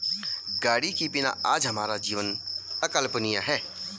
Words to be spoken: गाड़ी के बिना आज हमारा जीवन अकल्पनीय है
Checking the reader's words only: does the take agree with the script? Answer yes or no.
yes